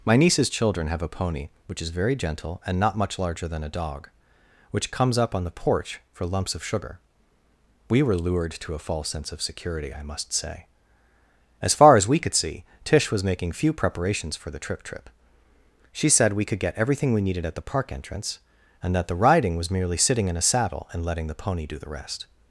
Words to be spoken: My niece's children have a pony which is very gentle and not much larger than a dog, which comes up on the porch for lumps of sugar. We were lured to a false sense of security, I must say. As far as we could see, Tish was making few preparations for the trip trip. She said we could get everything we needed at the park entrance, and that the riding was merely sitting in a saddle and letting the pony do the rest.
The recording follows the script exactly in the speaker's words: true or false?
true